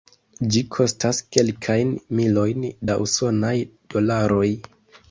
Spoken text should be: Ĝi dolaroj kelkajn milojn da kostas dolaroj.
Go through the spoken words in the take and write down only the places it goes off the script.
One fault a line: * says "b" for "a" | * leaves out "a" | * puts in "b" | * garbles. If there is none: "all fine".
* says "kostas" for "dolaroj"
* says "usonaj" for "kostas"